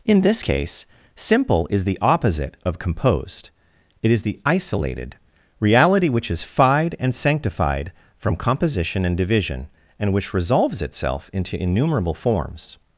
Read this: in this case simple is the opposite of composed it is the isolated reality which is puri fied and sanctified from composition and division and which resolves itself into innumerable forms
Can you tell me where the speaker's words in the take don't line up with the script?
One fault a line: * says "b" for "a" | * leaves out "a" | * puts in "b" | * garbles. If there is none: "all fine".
* leaves out "puri"